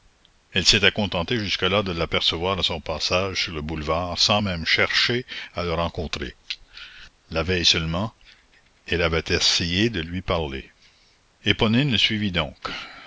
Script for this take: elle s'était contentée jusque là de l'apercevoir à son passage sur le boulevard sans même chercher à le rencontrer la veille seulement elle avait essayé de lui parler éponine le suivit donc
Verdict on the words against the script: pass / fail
pass